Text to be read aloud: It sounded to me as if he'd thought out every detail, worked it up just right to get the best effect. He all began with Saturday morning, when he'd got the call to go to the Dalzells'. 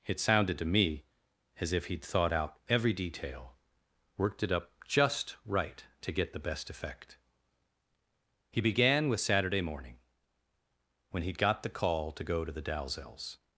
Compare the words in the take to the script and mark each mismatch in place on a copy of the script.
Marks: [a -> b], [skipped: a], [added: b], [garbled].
It sounded to me as if he'd thought out every detail, worked it up just right to get the best effect. He [skipped: all] began with Saturday morning, when he'd got the call to go to the Dalzells'.